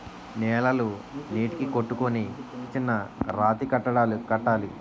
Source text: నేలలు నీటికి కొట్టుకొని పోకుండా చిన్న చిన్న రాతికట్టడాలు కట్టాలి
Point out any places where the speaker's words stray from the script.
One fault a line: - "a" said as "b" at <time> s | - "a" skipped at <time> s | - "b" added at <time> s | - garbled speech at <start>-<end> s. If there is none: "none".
- "పోకుండా చిన్న" skipped at 2.2 s